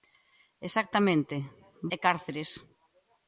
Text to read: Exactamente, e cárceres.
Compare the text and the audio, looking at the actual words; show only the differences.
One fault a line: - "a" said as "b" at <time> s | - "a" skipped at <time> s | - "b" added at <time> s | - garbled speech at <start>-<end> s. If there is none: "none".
none